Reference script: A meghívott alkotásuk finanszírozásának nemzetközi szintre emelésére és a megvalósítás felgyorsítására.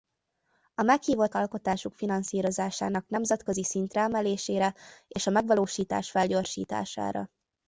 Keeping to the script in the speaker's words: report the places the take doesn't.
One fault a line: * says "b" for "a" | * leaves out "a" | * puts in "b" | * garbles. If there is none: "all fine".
all fine